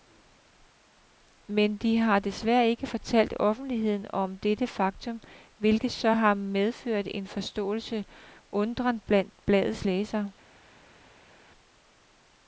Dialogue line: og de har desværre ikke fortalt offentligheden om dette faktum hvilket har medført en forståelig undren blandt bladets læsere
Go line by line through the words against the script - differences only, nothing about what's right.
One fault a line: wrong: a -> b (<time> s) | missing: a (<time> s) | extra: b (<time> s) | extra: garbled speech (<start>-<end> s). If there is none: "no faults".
wrong: og -> men (1.5 s)
extra: så (5.9 s)